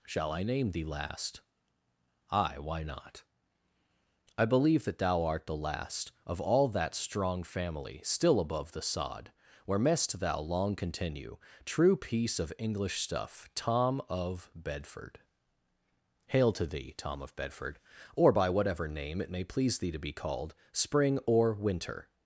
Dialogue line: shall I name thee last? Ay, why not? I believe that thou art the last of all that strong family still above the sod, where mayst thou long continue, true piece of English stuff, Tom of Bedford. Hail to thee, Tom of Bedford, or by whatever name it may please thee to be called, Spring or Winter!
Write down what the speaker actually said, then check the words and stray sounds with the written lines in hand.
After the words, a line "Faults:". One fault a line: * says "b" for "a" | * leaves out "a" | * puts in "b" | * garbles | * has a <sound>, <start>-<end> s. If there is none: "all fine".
shall I name thee last? Ay, why not? I believe that thou art the last of all that strong family still above the sod, where mayst thou long continue, true piece of English stuff, Tom of Bedford. Hail to thee, Tom of Bedford, or by whatever name it may please thee to be called, Spring or Winter!
Faults:
all fine